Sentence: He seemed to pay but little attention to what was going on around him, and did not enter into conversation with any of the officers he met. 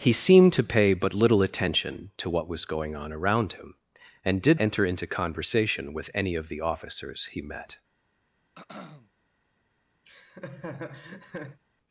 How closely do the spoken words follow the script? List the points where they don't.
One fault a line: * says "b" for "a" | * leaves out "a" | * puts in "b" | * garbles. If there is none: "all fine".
* leaves out "not"